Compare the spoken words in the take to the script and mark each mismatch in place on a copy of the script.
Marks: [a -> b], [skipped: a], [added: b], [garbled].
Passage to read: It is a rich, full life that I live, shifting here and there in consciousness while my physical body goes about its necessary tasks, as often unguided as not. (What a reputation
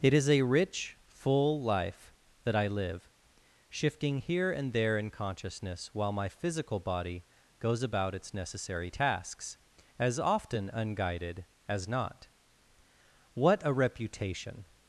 It is a rich, full life that I live, shifting here and there in consciousness while my physical body goes about its necessary tasks, as often unguided as not. (What a reputation